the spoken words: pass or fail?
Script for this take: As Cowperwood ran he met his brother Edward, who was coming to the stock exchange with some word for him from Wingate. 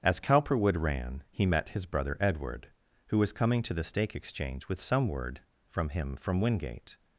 fail